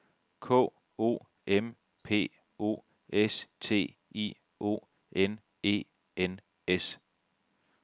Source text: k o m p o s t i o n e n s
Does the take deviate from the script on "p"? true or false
false